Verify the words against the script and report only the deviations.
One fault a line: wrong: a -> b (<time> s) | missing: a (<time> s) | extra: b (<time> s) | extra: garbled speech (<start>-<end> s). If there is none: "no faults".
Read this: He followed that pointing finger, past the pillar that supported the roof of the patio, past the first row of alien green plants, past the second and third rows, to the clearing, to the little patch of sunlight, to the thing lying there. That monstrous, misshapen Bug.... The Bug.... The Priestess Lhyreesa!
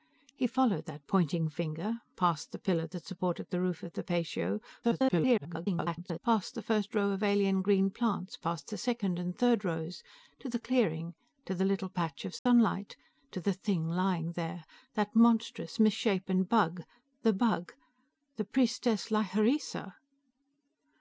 extra: garbled speech (4.8-6.2 s)